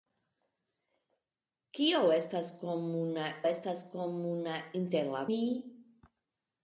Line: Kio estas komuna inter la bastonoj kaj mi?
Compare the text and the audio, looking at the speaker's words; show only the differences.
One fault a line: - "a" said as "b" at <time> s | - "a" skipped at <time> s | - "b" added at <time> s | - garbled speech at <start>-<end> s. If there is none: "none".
- "estas komuna" added at 3.5 s
- "bastonoj kaj" skipped at 5.2 s